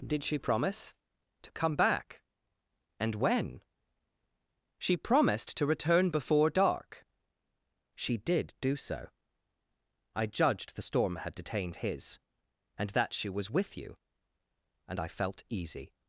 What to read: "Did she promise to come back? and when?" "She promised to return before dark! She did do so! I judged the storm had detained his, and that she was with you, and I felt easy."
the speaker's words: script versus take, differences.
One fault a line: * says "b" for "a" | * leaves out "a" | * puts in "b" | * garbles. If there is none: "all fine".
all fine